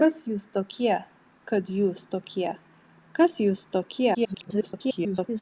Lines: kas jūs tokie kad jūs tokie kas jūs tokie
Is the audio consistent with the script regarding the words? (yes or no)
no